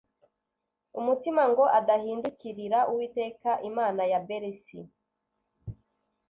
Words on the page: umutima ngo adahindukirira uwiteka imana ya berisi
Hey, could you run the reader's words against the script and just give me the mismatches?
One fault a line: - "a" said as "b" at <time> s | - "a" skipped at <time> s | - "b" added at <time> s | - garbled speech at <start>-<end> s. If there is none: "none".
none